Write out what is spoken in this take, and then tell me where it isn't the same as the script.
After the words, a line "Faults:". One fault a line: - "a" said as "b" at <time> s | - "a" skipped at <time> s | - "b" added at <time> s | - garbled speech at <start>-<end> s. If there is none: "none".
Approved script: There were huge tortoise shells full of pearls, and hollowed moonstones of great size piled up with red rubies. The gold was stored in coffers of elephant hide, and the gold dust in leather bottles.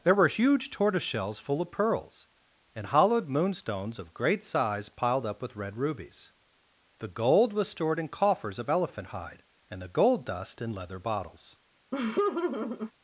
There were huge tortoise shells full of pearls, and hollowed moonstones of great size piled up with red rubies. The gold was stored in coffers of elephant hide, and the gold dust in leather bottles.
Faults:
none